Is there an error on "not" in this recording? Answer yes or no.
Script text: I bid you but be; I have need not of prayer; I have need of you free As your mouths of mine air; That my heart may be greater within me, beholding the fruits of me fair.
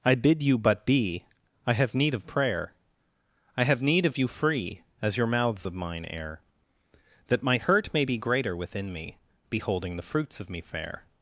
yes